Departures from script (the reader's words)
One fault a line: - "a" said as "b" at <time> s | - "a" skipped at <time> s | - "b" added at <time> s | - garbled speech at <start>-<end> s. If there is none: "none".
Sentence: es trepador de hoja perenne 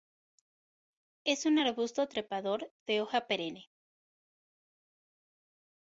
- "un arbusto" added at 1.4 s